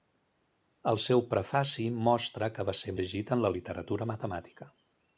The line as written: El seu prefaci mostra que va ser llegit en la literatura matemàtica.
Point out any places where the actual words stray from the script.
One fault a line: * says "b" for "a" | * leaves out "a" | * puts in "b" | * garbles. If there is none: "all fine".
all fine